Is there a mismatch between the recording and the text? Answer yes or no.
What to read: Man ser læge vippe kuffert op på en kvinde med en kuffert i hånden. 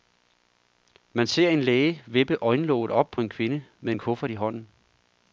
yes